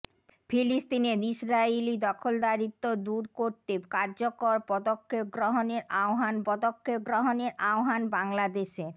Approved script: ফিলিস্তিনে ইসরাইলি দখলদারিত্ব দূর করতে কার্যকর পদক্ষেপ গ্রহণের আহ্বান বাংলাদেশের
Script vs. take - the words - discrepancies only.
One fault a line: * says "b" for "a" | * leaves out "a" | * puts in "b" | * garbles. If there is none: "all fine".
* puts in "পদক্ষেপ গ্রহণের আহ্বান"